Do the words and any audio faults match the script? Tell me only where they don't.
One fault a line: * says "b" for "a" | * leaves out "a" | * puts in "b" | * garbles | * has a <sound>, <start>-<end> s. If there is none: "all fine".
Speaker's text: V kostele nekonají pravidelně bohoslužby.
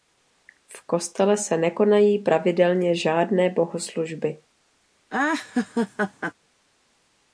* puts in "se"
* puts in "žádné"
* has a laugh, 5.1-6.3 s